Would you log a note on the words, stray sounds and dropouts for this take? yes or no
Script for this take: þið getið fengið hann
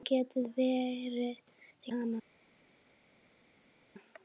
yes